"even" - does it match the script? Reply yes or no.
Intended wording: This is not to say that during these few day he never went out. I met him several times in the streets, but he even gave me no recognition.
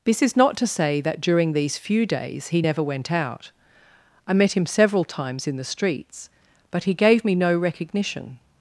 no